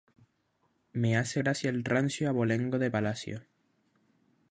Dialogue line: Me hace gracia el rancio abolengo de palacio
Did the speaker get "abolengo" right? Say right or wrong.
right